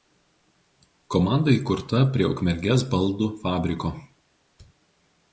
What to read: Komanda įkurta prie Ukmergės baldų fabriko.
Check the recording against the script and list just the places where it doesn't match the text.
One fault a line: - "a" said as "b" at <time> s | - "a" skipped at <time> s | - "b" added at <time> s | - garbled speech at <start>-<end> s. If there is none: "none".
none